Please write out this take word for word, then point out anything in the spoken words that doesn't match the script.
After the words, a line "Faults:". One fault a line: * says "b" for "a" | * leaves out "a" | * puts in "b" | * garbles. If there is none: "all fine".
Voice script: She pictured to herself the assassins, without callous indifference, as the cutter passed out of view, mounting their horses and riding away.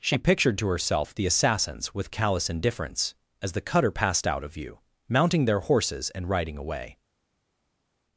She pictured to herself the assassins, with callous indifference, as the cutter passed out of view, mounting their horses and riding away.
Faults:
* says "with" for "without"